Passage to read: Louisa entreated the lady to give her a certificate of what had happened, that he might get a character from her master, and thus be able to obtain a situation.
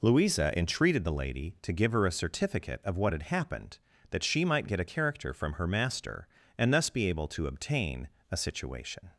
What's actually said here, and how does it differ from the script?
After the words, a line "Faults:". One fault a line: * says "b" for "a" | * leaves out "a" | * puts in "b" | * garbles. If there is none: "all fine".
Louisa entreated the lady to give her a certificate of what had happened, that she might get a character from her master, and thus be able to obtain a situation.
Faults:
* says "she" for "he"